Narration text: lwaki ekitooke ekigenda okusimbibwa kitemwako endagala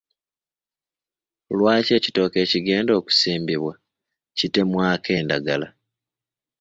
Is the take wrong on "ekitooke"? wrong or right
right